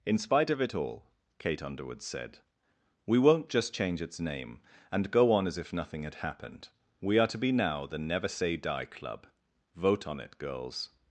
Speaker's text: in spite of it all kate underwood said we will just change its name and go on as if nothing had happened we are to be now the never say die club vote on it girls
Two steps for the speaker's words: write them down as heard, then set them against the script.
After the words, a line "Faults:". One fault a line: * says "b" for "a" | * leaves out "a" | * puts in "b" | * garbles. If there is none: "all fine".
in spite of it all kate underwood said we won't just change its name and go on as if nothing had happened we are to be now the never say die club vote on it girls
Faults:
* says "won't" for "will"